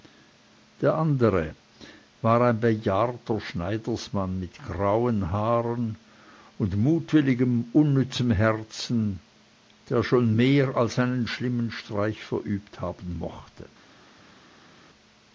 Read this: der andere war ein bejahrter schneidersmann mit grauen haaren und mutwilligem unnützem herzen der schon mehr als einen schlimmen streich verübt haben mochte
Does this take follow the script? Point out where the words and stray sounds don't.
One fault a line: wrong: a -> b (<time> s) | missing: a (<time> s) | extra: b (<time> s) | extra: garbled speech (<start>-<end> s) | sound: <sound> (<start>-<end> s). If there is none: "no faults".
no faults